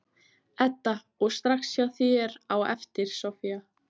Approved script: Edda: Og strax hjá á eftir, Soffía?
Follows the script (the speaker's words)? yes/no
no